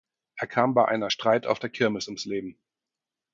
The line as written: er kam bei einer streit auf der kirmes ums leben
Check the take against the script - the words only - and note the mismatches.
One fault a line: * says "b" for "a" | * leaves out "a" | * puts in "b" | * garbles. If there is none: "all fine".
all fine